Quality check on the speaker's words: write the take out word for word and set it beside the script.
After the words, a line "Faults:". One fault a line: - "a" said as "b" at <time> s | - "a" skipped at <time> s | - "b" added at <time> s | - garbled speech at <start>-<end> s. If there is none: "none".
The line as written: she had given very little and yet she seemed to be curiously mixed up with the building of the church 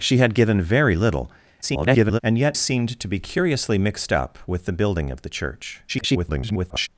she had given very little [garbled] and yet seemed to be curiously mixed up with the building of the church [garbled]
Faults:
- garbled speech at 1.6-2.2 s
- "she" skipped at 2.6 s
- garbled speech at 5.9-6.9 s